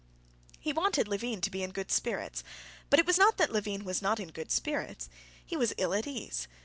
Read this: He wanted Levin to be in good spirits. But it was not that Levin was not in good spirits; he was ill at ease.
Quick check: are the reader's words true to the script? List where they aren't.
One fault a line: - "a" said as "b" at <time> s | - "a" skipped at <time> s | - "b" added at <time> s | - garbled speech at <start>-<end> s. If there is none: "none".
none